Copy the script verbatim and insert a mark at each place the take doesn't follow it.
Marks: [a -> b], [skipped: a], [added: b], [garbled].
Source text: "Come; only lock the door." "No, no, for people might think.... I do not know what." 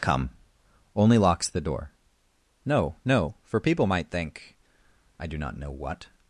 "Come; only [lock -> locks] the door." "No, no, for people might think.... I do not know what."